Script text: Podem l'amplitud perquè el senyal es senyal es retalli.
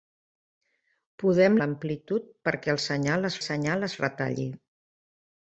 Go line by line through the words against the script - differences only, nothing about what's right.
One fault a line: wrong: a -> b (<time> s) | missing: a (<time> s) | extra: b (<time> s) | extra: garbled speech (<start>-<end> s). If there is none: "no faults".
no faults